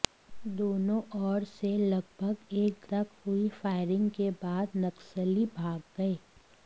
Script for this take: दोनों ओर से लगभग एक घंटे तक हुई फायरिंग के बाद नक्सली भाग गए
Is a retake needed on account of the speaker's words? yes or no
yes